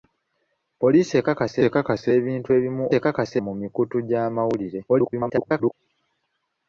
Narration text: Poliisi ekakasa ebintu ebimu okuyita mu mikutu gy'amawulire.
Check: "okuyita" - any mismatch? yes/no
yes